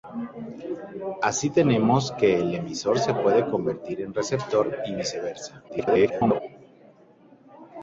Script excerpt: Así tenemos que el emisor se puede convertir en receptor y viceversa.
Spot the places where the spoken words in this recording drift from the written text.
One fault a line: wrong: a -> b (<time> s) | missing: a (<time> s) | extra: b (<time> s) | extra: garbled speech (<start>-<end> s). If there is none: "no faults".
extra: garbled speech (5.7-6.4 s)